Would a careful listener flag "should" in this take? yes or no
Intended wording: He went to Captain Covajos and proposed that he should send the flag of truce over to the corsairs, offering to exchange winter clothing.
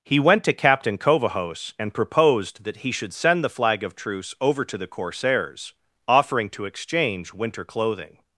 no